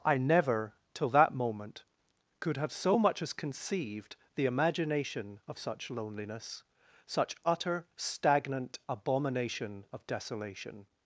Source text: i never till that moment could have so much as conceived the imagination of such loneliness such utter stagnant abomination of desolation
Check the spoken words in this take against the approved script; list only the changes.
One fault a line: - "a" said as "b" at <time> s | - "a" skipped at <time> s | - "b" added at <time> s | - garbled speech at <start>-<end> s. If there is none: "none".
none